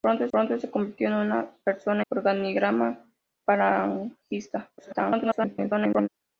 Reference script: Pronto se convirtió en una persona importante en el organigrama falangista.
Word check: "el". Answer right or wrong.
wrong